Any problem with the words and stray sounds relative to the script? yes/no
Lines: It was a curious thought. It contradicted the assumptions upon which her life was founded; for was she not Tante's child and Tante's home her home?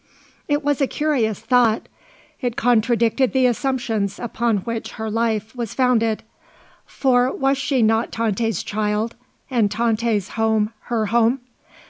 no